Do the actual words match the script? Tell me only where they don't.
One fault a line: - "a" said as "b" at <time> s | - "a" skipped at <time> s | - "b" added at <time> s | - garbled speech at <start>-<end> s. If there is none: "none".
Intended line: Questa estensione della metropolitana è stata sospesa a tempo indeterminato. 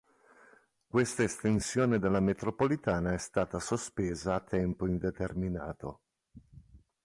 none